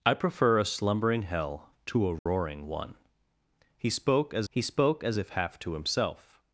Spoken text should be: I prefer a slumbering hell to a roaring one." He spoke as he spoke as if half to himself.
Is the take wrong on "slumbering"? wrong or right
right